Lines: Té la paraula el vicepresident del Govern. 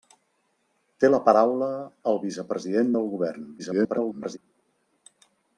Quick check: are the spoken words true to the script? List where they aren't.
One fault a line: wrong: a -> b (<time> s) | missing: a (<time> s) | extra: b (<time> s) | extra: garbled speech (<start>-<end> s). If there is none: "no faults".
extra: garbled speech (3.6-4.4 s)